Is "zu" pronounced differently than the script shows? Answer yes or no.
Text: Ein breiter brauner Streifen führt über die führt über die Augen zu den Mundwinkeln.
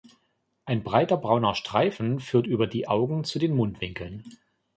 no